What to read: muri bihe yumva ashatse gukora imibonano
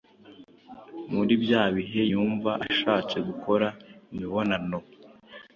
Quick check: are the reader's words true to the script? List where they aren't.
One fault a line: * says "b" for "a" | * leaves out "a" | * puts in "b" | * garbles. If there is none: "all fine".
* puts in "bya"